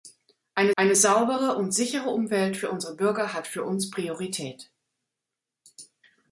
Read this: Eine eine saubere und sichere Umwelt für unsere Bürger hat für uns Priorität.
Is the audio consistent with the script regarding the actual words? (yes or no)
yes